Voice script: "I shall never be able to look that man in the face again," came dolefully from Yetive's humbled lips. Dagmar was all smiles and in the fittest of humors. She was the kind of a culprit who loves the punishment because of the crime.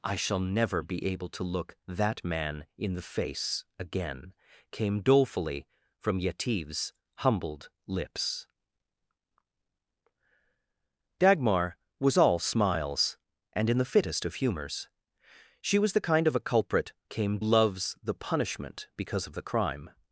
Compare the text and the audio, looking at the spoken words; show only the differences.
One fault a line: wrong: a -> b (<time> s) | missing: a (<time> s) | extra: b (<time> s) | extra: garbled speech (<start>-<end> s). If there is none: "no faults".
wrong: who -> came (17.1 s)